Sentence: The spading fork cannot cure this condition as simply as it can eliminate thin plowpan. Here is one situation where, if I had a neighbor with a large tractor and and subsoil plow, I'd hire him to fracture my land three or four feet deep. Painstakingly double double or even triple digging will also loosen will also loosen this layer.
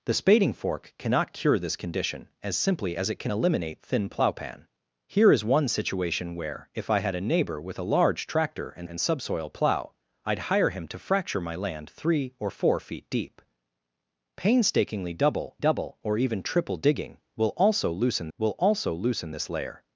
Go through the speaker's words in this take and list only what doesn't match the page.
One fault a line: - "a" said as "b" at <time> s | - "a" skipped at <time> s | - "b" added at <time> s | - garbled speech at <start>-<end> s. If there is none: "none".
none